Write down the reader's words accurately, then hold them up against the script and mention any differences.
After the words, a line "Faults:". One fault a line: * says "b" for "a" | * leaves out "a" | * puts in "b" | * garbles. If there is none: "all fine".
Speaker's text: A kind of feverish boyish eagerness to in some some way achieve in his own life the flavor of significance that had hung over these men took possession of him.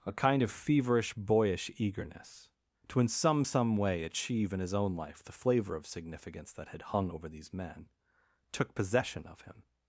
A kind of feverish boyish eagerness to in some some way achieve in his own life the flavor of significance that had hung over these men took possession of him.
Faults:
all fine